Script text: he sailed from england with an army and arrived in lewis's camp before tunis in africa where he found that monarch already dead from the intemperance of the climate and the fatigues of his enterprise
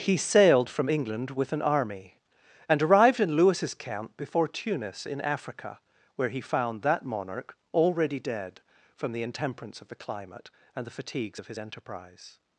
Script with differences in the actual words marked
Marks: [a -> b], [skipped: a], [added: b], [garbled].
he sailed from england with an army and arrived in lewis's camp before tunis in africa where he found that monarch already dead from the intemperance of the climate and the fatigues of his enterprise